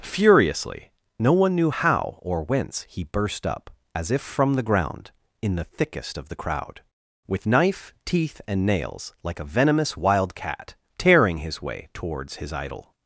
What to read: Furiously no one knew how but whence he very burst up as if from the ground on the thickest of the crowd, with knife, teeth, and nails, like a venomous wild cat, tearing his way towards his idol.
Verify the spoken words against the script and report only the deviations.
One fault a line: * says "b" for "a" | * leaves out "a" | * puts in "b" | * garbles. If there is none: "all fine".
* says "or" for "but"
* leaves out "very"
* says "in" for "on"